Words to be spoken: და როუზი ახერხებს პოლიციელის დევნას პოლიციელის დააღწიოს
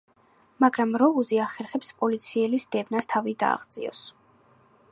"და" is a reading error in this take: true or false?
true